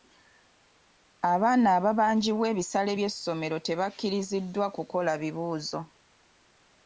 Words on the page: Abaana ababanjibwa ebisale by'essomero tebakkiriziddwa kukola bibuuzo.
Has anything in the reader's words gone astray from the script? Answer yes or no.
no